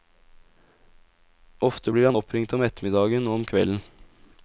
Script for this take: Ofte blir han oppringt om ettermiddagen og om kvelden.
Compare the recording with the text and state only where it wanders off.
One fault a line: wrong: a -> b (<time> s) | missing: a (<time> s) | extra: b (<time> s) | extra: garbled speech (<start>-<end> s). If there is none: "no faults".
no faults